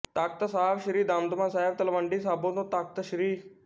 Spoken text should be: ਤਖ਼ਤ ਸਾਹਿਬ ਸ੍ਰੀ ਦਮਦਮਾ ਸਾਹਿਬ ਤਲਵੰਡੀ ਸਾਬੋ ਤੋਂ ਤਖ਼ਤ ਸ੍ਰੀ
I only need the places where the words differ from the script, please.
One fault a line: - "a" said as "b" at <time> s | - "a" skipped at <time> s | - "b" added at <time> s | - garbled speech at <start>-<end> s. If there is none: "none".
none